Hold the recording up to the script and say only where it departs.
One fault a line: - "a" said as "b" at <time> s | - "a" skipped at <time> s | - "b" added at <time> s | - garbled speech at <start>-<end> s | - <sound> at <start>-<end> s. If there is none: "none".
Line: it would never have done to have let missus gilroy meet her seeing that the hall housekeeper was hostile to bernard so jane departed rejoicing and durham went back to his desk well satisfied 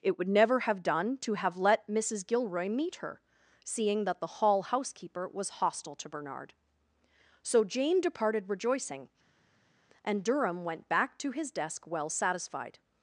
none